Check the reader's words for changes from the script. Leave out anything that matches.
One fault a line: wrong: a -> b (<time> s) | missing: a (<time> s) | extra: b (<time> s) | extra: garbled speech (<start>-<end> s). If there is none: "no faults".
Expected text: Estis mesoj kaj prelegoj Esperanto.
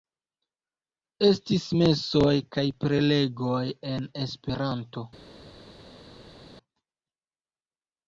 extra: en (4.0 s)